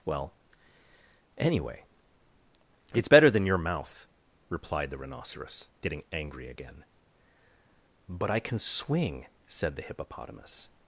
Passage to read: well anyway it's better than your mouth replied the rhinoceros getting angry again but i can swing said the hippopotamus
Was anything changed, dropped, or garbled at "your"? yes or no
no